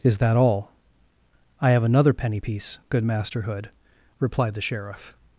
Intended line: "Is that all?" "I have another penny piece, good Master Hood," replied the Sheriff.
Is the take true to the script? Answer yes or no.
yes